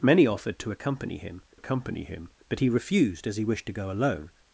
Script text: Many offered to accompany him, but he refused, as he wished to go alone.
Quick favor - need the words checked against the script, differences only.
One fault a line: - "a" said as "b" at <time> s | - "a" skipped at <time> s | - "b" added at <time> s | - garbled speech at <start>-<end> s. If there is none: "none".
- "accompany him" added at 1.5 s